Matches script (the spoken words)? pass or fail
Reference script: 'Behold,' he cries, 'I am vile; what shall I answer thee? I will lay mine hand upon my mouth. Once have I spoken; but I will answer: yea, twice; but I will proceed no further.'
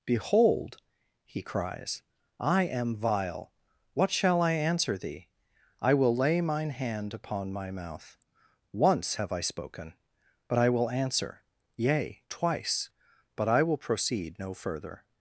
pass